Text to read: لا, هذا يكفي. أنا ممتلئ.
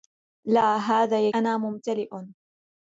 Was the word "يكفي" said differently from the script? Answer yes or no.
yes